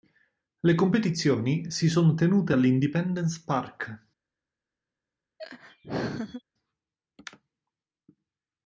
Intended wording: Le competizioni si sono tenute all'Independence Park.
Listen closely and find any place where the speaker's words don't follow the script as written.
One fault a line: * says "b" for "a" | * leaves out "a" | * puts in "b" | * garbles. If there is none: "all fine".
all fine